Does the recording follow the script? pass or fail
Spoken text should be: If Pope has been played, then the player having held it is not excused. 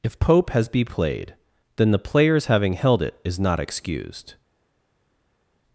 fail